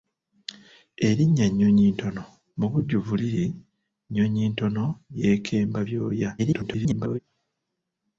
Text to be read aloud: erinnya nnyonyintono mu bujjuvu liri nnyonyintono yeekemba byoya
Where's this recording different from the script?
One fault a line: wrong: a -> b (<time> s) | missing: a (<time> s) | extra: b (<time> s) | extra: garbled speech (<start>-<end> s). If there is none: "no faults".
extra: garbled speech (6.4-7.2 s)